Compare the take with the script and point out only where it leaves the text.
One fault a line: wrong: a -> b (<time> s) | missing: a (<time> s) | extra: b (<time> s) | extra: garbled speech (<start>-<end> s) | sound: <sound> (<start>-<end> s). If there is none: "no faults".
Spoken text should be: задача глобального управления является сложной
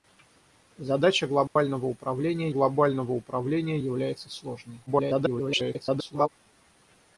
sound: dropout (1.5-1.6 s)
extra: глобального управления (2.5 s)
extra: garbled speech (4.9-6.3 s)